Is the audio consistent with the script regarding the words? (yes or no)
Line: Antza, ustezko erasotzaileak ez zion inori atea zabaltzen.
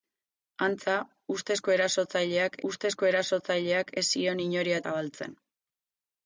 no